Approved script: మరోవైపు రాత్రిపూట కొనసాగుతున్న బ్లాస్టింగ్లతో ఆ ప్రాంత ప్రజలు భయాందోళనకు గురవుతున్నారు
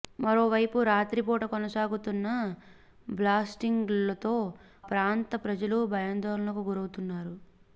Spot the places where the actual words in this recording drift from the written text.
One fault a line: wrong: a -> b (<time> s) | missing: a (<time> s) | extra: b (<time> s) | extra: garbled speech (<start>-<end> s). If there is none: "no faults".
missing: ఆ (4.3 s)